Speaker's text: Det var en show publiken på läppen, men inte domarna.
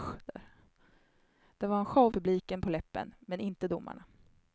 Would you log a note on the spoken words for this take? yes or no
no